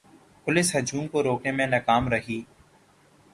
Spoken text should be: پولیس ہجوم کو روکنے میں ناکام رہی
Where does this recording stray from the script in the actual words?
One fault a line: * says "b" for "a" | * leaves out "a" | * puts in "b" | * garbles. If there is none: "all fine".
all fine